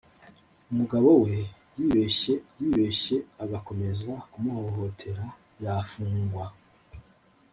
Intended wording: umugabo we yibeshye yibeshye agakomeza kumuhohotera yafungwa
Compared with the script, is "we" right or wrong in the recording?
right